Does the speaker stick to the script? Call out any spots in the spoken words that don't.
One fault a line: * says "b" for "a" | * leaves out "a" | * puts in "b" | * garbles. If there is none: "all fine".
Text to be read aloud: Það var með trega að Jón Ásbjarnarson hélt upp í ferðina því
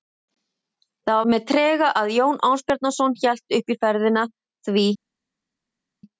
* leaves out "var"